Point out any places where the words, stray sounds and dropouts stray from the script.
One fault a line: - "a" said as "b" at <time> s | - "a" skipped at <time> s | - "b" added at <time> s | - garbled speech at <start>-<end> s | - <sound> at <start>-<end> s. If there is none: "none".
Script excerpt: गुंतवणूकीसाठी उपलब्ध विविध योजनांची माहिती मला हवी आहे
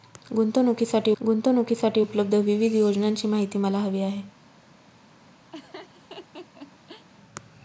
- "गुंतवणूकीसाठी" added at 1.2 s
- laugh at 5.5-7.1 s